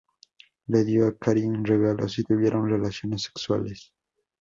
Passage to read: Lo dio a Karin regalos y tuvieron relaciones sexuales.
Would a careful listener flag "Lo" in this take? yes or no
yes